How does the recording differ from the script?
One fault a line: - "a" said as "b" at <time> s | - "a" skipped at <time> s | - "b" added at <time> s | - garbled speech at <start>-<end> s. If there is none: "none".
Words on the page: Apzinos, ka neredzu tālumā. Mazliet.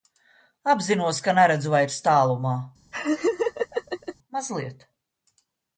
- "vairs" added at 1.8 s